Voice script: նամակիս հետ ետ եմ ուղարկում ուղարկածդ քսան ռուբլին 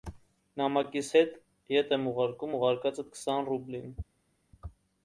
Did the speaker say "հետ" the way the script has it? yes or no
yes